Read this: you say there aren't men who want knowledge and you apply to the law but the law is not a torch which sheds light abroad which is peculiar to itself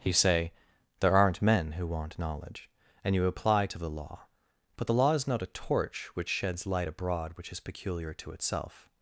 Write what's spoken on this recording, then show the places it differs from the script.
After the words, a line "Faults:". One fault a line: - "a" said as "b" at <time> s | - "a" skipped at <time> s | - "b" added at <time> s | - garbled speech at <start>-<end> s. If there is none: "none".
you say there aren't men who want knowledge and you apply to the law but the law is not a torch which sheds light abroad which is peculiar to itself
Faults:
none